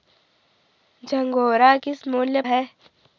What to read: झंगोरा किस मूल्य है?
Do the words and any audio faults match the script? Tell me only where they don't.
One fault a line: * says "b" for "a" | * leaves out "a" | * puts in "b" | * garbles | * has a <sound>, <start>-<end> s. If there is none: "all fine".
all fine